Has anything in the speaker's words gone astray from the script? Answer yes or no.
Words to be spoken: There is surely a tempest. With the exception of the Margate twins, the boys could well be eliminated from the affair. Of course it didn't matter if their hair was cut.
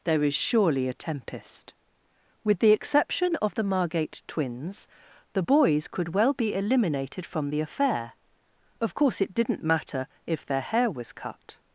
no